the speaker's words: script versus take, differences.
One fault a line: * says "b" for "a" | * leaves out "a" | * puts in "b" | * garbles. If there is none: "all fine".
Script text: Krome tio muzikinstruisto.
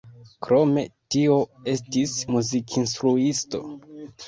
* puts in "estis"